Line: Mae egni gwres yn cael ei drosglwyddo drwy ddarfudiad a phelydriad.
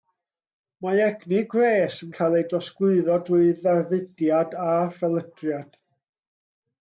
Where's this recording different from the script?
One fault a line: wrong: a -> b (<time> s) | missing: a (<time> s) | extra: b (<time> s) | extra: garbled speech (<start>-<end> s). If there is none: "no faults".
no faults